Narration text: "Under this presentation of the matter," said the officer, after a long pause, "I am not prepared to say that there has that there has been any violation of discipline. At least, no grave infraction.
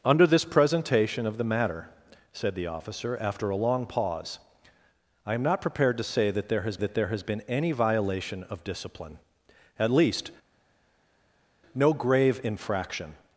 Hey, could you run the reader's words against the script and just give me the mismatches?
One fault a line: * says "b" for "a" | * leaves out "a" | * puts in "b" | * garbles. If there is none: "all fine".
all fine